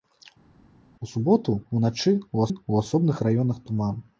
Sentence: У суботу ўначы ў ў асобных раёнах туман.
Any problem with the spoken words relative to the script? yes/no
no